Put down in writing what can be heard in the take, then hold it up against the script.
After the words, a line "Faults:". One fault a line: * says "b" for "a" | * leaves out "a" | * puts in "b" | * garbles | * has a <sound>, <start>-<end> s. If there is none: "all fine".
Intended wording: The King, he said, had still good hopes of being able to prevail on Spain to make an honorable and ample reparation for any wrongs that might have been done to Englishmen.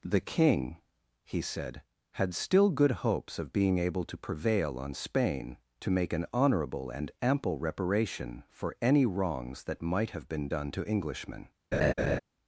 The King, he said, had still good hopes of being able to prevail on Spain to make an honorable and ample reparation for any wrongs that might have been done to Englishmen.
Faults:
* has a laugh, 11.7-12.2 s